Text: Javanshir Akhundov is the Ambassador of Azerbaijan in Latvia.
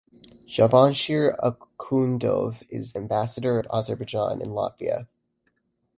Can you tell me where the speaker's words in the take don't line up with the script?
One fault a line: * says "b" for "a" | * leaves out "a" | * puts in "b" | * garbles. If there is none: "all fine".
* leaves out "the"